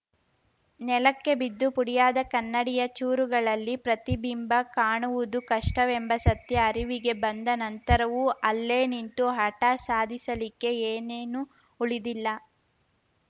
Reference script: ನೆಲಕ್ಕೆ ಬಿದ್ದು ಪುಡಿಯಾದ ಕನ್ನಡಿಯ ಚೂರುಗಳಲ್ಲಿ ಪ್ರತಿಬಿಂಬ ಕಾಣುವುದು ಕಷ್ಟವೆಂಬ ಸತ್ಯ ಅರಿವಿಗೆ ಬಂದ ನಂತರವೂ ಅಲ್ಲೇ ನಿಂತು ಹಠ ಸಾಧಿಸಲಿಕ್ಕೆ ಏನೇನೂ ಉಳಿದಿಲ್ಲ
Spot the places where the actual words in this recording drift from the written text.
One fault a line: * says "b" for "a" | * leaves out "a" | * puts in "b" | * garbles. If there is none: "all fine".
all fine